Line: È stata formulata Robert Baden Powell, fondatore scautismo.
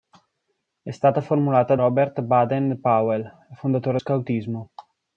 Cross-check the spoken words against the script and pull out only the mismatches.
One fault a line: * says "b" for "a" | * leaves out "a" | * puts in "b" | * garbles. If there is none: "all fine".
all fine